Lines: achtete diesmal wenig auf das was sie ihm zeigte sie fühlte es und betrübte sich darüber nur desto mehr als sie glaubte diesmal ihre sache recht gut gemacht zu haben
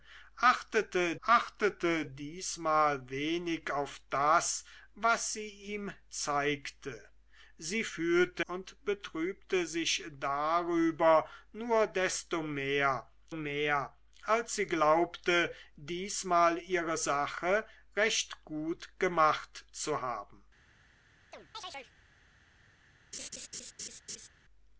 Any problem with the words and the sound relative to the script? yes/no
yes